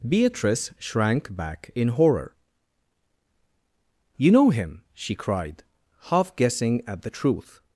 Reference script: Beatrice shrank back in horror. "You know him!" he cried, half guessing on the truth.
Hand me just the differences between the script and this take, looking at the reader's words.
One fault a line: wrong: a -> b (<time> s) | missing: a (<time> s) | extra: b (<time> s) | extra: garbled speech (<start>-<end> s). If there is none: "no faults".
wrong: he -> she (5.0 s)
wrong: on -> at (6.9 s)